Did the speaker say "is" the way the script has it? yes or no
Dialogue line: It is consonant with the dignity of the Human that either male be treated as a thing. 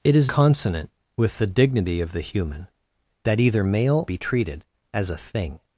yes